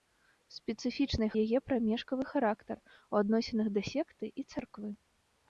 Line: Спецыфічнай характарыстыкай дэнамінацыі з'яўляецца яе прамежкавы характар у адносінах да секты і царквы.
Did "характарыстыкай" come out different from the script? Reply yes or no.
yes